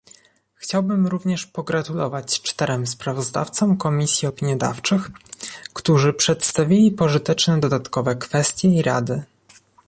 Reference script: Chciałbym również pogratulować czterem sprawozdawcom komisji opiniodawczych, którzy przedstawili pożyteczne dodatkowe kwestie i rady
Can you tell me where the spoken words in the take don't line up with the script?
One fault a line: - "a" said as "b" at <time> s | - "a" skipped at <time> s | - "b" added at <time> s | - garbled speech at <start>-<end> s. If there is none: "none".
none